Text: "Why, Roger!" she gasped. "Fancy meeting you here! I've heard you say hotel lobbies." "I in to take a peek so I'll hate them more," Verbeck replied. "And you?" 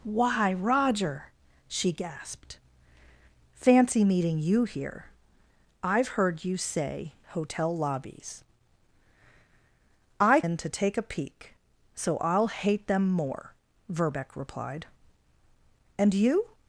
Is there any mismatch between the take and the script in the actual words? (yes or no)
no